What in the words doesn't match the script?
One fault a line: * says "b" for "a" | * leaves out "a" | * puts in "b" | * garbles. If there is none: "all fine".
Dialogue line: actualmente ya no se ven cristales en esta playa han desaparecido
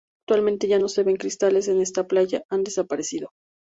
all fine